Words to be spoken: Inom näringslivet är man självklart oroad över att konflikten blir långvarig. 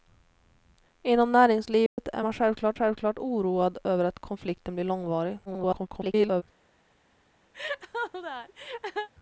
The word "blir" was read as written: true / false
true